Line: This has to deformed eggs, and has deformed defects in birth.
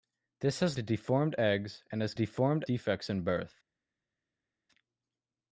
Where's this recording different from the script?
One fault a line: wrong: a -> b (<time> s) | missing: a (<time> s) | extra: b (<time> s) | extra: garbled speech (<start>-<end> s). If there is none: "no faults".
no faults